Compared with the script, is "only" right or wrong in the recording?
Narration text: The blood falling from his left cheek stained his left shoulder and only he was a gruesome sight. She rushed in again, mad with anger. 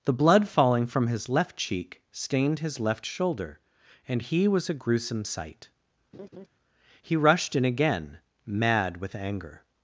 wrong